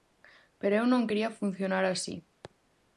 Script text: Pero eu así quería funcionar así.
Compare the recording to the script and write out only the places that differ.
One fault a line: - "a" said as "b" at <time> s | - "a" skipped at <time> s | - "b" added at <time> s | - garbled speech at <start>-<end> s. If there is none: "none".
- "así" said as "non" at 0.9 s